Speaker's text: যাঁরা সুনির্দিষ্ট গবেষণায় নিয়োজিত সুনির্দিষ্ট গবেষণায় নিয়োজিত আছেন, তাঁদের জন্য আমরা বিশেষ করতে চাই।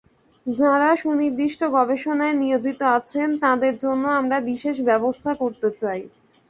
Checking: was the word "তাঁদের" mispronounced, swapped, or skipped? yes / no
no